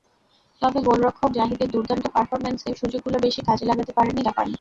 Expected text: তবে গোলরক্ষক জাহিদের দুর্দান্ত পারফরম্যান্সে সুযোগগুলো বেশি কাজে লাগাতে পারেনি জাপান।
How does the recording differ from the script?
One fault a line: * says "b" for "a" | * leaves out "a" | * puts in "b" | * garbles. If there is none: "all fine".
all fine